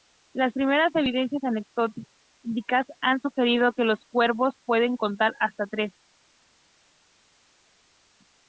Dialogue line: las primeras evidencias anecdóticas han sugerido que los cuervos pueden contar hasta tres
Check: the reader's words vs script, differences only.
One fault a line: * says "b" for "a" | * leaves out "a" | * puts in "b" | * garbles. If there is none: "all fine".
all fine